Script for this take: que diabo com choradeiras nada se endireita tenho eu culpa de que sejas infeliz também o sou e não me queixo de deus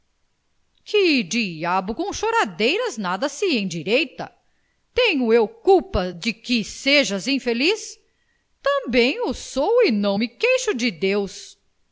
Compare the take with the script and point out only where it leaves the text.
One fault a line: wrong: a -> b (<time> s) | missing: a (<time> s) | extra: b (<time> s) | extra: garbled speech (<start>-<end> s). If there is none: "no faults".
no faults